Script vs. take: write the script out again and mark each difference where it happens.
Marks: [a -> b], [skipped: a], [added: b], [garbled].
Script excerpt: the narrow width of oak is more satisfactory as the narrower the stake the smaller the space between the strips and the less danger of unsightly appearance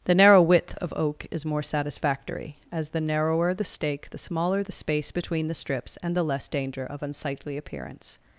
the narrow width of oak is more satisfactory as the narrower the stake the smaller the space between the strips and the less danger of unsightly appearance